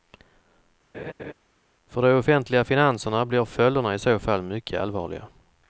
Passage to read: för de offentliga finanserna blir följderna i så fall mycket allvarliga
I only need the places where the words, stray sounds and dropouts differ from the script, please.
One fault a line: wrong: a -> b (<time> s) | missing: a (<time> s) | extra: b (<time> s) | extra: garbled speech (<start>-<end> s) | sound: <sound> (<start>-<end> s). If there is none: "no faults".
sound: laugh (0.9-1.3 s)